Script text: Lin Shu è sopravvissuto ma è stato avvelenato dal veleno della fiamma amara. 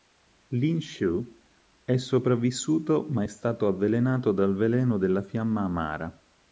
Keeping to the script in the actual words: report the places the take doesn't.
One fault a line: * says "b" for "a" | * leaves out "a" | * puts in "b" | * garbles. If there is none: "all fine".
all fine